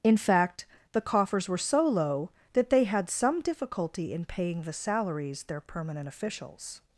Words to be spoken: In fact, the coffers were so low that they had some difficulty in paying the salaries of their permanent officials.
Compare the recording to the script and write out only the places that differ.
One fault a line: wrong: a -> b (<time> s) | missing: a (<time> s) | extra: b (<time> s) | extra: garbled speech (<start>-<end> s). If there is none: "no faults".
missing: of (5.4 s)